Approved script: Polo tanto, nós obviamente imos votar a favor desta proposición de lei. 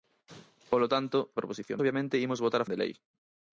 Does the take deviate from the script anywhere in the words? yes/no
yes